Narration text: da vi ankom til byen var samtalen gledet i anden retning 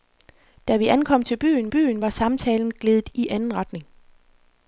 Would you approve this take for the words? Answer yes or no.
no